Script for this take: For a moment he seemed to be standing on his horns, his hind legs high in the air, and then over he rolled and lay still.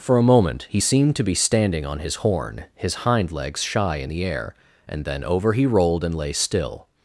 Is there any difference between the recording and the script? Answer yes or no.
yes